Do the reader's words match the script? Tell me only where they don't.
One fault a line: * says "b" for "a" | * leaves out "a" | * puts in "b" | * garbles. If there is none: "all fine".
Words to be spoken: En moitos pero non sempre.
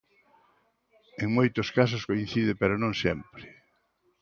* puts in "casos coincide"